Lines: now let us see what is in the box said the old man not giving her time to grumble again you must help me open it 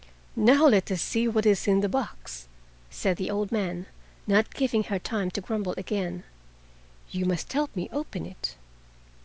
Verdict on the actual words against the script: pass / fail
pass